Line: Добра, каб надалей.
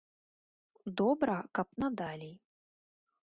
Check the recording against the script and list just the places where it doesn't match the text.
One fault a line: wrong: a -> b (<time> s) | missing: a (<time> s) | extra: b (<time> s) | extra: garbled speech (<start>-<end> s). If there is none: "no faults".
no faults